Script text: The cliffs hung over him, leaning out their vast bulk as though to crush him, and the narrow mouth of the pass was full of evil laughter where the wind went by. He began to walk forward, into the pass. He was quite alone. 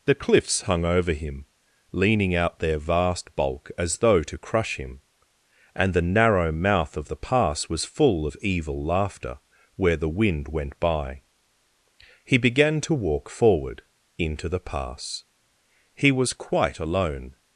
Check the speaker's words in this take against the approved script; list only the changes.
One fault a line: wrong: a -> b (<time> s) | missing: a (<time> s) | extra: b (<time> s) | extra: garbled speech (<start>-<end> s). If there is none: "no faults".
no faults